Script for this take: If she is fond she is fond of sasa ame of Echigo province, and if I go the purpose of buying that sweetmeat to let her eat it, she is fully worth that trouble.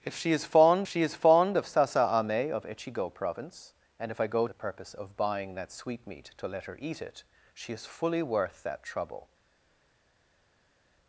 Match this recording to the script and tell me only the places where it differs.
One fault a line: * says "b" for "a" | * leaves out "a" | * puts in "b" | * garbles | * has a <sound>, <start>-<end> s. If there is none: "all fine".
all fine